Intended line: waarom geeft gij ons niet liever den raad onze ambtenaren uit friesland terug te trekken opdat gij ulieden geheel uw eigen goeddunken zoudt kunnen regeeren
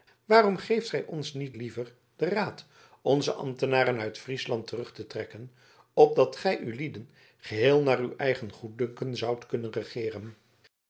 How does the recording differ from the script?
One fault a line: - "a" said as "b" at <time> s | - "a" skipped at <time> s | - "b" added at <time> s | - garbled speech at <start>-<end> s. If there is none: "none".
- "naar" added at 7.8 s